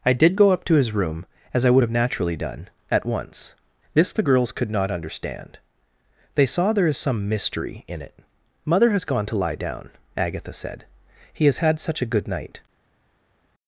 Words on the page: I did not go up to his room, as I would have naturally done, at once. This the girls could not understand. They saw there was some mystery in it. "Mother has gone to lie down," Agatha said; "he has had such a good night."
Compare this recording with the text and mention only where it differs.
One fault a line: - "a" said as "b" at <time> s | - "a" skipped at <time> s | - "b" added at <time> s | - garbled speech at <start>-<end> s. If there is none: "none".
- "not" skipped at 0.3 s
- "was" said as "is" at 6.9 s